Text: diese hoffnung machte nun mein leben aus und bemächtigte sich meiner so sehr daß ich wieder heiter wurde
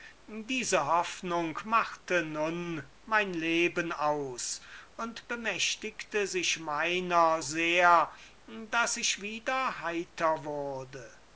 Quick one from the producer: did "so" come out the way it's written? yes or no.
no